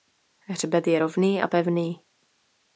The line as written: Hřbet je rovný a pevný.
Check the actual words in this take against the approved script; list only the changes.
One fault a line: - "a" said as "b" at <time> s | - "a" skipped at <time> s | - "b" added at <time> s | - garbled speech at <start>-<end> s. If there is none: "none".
none